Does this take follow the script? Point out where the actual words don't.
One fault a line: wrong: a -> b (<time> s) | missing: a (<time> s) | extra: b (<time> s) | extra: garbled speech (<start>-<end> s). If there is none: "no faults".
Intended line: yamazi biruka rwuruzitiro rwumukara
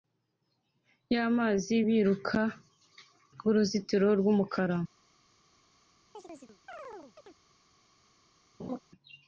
no faults